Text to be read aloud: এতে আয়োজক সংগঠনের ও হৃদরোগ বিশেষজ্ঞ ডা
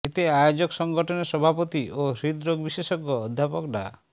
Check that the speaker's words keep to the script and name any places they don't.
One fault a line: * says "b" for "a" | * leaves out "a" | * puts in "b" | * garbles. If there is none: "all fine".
* puts in "সভাপতি"
* puts in "অধ্যাপক"